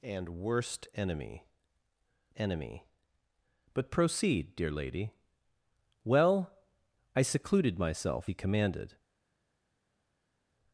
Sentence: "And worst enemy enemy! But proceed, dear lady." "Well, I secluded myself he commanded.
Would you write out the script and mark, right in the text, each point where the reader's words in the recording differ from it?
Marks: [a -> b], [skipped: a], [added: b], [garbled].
"And worst enemy enemy! But proceed, dear lady." "Well, I secluded myself he commanded.